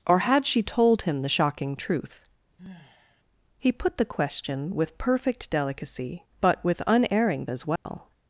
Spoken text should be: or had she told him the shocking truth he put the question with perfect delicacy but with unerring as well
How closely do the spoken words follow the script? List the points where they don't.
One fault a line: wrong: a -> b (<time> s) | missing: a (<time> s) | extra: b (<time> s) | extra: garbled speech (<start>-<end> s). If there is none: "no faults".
no faults